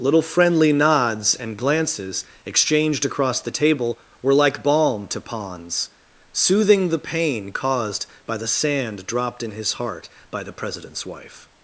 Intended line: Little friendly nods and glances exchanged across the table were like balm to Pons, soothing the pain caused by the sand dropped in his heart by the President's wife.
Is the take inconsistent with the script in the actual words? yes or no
no